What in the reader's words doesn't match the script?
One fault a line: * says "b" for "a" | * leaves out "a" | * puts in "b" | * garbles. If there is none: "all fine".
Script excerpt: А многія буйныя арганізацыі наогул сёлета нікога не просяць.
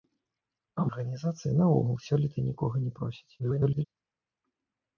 * leaves out "многія буйныя"
* garbles